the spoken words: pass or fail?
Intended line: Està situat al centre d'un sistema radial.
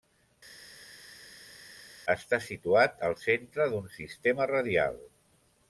pass